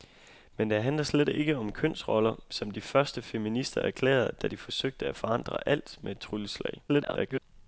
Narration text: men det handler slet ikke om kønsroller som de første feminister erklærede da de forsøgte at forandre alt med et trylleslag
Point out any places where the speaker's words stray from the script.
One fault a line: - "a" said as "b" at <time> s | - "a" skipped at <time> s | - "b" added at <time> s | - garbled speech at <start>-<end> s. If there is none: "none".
- garbled speech at 6.9-7.4 s